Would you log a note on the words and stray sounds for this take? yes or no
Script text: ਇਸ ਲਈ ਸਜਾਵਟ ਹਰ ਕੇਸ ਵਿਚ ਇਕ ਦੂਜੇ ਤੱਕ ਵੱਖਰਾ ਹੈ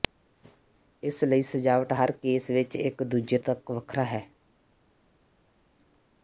no